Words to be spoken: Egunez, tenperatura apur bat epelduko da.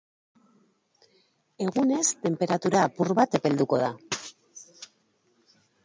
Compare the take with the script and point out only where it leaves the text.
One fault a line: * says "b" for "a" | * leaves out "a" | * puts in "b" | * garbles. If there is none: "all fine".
all fine